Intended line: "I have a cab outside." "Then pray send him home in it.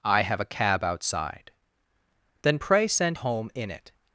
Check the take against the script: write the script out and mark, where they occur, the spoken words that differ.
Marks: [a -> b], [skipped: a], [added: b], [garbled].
"I have a cab outside." "Then pray send [skipped: him] home in it.